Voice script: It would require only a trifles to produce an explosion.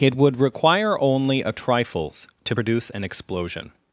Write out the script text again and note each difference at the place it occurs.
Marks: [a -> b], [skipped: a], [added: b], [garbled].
It would require only a trifles to produce an explosion.